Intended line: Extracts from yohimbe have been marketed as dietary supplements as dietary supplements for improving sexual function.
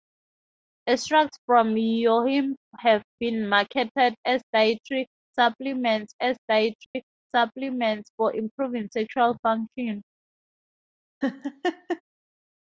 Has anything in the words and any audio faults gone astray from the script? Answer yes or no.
yes